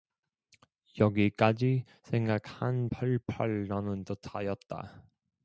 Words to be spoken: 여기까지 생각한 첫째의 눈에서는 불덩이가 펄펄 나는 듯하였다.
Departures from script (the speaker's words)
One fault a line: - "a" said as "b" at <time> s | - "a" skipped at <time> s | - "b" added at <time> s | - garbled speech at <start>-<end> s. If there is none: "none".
- "첫째의 눈에서는 불덩이가" skipped at 2.9 s